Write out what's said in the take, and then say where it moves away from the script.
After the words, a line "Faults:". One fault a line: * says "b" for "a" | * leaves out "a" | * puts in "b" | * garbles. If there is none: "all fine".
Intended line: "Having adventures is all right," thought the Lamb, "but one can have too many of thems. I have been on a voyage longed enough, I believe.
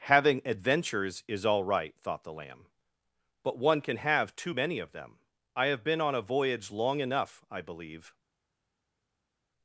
"Having adventures is all right," thought the Lamb, "but one can have too many of them. I have been on a voyage long enough, I believe.
Faults:
* says "them" for "thems"
* says "long" for "longed"